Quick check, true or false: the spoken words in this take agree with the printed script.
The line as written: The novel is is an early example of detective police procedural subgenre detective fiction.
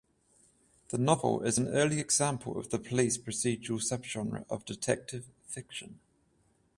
false